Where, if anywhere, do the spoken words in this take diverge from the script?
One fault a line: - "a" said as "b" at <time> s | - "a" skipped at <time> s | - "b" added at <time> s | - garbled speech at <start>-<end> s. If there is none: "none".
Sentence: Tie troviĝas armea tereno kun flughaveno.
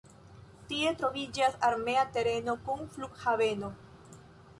none